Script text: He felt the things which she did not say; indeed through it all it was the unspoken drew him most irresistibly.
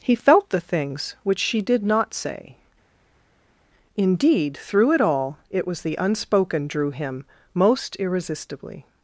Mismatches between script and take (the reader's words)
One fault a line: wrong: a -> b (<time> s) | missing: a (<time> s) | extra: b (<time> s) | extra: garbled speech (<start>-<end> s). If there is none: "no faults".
no faults